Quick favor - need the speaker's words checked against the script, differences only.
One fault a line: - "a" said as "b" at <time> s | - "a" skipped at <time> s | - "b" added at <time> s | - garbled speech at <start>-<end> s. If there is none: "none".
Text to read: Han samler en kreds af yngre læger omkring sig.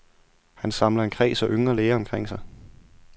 none